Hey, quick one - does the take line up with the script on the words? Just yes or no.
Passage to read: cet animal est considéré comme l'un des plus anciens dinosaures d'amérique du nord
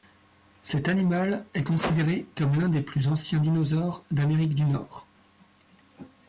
yes